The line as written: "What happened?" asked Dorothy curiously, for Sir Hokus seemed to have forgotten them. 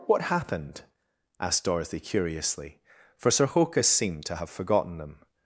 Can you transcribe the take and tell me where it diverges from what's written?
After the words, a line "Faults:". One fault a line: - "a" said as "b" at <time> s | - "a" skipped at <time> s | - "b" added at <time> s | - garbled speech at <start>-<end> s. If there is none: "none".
"What happened?" asked Dorothy curiously, for Sir Hokus seemed to have forgotten them.
Faults:
none